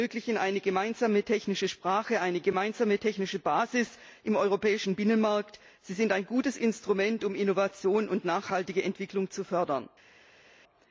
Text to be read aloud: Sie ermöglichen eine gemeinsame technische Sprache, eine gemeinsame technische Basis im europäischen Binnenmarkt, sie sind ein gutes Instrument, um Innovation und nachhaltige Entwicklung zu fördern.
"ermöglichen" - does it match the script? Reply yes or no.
yes